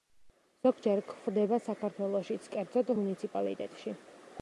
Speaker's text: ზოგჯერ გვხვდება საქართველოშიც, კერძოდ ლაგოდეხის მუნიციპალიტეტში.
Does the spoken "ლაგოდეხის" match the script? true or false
false